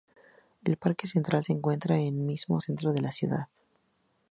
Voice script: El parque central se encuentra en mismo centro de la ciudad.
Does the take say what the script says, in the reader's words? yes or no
yes